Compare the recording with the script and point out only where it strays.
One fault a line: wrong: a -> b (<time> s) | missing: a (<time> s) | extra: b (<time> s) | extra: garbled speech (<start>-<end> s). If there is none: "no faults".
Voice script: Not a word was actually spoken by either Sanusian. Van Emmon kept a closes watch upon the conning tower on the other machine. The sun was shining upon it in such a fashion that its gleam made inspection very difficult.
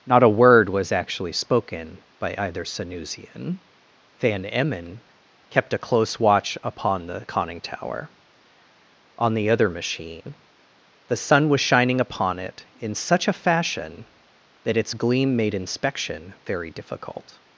wrong: closes -> close (5.8 s)